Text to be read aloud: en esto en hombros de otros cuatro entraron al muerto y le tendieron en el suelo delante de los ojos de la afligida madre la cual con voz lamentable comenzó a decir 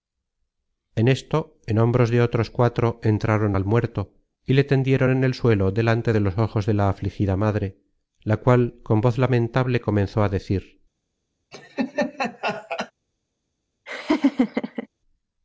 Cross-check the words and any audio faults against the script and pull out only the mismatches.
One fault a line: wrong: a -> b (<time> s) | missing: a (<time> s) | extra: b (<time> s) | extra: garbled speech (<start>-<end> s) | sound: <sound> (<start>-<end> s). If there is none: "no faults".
sound: laugh (11.5-12.9 s)
sound: laugh (13.9-14.9 s)